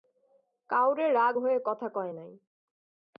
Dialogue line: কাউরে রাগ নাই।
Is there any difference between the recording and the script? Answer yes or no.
yes